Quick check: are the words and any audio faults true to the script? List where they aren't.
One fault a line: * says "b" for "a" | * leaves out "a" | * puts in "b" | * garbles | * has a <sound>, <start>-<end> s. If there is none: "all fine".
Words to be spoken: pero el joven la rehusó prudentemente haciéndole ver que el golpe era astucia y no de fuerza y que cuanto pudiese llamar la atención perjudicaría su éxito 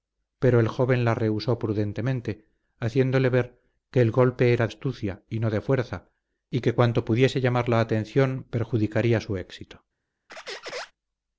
* has a squeak, 10.3-10.9 s